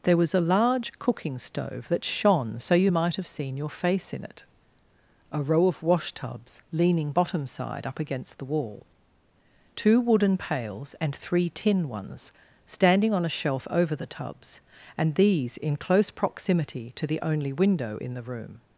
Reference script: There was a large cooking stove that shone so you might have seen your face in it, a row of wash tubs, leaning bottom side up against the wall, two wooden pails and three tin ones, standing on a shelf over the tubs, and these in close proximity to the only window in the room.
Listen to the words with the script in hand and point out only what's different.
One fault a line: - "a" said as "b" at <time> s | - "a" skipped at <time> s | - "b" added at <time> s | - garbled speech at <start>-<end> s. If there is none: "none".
none